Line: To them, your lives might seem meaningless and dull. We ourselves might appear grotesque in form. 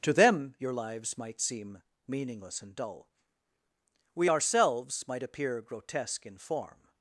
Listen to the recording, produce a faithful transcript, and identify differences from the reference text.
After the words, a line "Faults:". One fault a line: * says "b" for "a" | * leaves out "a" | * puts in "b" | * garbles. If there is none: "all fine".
To them, your lives might seem meaningless and dull. We ourselves might appear grotesque in form.
Faults:
all fine